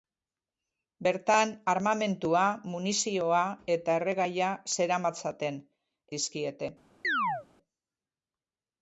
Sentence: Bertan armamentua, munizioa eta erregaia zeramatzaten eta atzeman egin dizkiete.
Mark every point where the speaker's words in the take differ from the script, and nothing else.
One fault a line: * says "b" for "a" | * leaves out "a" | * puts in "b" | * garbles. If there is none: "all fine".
* leaves out "eta atzeman egin"